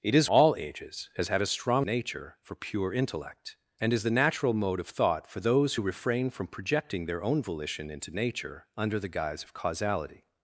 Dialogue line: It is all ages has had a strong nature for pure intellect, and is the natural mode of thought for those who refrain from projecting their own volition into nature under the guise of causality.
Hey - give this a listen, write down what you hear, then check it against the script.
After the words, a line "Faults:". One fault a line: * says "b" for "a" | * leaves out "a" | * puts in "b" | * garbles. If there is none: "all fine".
It is all ages has had a strong nature for pure intellect, and is the natural mode of thought for those who refrain from projecting their own volition into nature under the guise of causality.
Faults:
all fine